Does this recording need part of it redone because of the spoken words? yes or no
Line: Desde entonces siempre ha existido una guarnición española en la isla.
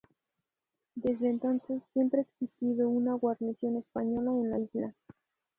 no